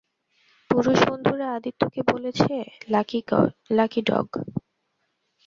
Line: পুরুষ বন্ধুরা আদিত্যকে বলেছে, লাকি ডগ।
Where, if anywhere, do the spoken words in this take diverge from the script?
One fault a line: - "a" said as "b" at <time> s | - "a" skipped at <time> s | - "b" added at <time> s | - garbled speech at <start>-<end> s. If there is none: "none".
none